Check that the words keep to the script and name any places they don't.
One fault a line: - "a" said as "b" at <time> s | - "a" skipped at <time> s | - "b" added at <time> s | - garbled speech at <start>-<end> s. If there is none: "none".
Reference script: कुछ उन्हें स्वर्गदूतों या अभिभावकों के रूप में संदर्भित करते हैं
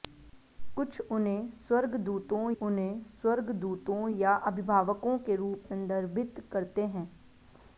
- "उन्हें स्वर्गदूतों" added at 2.5 s
- "में" skipped at 5.6 s